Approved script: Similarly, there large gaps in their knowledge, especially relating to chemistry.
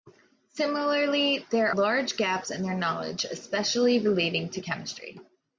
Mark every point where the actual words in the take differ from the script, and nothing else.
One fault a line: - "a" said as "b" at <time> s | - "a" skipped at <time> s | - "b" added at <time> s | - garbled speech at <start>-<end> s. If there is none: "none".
none